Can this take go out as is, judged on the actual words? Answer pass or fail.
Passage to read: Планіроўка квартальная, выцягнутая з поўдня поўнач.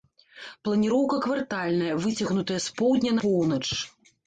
pass